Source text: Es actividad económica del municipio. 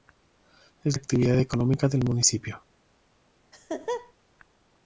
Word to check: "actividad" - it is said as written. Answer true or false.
true